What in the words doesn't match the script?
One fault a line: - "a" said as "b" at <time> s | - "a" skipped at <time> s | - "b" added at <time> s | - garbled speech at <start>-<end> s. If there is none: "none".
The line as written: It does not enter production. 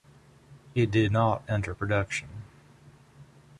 - "does" said as "did" at 0.9 s